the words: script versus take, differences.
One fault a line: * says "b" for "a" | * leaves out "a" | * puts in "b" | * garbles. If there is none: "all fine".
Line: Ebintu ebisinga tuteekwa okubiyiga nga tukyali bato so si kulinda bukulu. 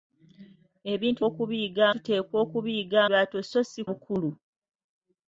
* says "okubiyiga" for "ebisinga"
* leaves out "nga tukyali"
* leaves out "kulinda"